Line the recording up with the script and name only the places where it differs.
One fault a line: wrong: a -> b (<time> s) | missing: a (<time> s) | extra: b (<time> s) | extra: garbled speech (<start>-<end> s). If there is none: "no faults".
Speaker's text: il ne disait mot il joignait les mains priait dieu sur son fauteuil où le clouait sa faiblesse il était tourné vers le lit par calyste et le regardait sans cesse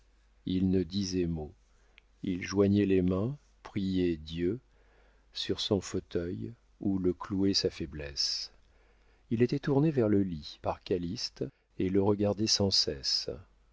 no faults